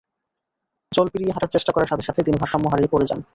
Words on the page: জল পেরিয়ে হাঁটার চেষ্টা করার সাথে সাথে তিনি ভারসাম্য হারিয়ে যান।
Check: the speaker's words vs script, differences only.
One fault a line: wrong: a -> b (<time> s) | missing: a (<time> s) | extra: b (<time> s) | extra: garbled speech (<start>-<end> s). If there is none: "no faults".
extra: পড়ে (2.9 s)